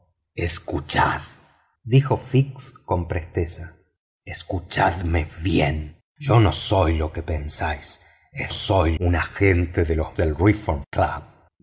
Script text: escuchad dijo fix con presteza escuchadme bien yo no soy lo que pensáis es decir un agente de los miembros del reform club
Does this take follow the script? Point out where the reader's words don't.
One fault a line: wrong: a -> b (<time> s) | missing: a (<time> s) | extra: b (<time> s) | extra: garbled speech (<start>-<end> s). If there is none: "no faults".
wrong: decir -> soy (8.5 s)
missing: miembros (10.2 s)